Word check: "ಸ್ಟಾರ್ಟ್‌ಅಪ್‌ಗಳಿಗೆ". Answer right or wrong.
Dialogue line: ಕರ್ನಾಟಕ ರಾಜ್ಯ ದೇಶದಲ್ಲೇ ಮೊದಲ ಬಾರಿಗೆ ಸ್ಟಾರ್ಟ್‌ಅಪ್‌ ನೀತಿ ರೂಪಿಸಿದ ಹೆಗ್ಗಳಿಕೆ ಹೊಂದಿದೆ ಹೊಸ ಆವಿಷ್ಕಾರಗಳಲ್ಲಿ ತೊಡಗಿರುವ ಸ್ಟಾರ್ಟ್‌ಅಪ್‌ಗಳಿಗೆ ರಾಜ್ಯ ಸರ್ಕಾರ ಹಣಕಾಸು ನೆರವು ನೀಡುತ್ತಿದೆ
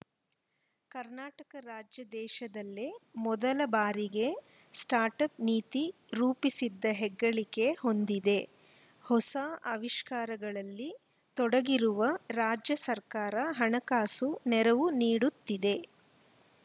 wrong